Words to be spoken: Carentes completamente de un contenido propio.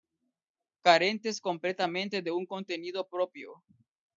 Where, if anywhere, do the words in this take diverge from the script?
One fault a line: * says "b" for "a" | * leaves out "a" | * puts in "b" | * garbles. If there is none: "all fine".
all fine